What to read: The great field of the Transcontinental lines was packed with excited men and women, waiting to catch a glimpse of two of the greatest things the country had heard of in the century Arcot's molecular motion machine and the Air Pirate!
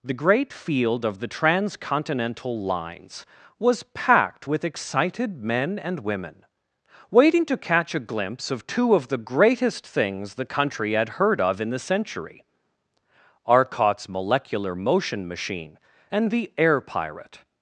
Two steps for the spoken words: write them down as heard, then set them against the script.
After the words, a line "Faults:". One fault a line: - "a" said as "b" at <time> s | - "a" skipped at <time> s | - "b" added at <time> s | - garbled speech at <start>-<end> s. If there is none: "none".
The great field of the Transcontinental lines was packed with excited men and women, waiting to catch a glimpse of two of the greatest things the country had heard of in the century Arcot's molecular motion machine and the Air Pirate!
Faults:
none